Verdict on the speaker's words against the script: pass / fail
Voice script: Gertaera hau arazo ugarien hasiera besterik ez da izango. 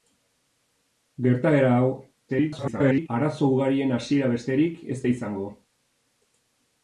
fail